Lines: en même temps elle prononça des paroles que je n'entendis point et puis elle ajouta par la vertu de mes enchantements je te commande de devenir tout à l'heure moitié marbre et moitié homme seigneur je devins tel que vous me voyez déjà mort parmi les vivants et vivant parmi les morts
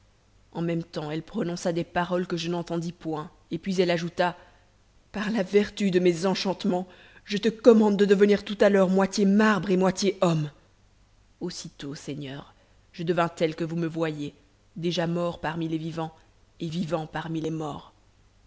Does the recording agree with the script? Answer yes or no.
no